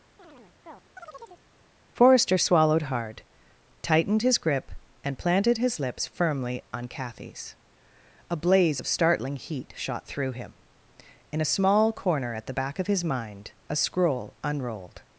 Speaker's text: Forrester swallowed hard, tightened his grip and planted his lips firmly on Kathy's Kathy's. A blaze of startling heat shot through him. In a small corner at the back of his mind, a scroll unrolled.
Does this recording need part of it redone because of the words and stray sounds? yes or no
yes